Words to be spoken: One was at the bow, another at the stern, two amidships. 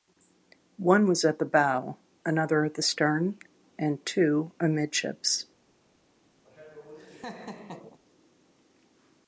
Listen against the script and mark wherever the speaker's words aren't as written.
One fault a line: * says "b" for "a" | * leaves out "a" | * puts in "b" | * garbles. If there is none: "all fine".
* puts in "and"